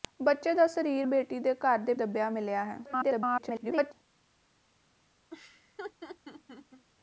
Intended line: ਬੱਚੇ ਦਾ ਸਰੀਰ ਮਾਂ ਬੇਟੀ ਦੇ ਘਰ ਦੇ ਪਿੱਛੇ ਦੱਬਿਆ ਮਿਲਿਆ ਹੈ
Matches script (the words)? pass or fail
fail